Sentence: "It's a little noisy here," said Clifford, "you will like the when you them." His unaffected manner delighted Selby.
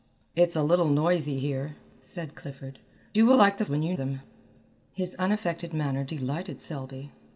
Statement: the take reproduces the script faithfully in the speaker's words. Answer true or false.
true